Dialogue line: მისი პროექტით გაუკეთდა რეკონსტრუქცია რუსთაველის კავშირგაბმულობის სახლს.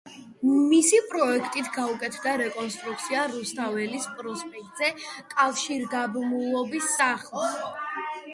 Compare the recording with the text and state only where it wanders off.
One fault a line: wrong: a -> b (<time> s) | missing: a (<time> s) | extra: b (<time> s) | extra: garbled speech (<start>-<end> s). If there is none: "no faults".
extra: პროსპექტზე (4.2 s)